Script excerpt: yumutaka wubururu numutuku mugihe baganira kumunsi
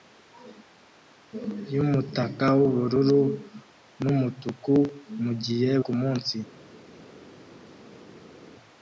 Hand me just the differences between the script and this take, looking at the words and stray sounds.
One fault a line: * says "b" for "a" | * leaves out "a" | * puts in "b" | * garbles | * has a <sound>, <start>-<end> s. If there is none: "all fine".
* leaves out "baganira"